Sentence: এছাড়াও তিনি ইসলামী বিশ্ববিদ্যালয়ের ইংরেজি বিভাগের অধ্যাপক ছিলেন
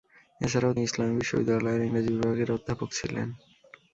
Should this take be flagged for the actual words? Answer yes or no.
yes